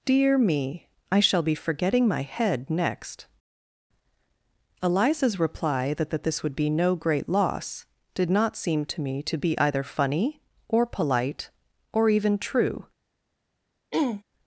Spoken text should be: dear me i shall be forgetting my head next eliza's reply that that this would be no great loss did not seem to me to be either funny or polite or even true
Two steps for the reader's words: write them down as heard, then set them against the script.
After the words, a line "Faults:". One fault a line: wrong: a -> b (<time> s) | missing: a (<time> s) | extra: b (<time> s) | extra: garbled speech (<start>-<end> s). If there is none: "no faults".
dear me i shall be forgetting my head next eliza's reply that that this would be no great loss did not seem to me to be either funny or polite or even true
Faults:
no faults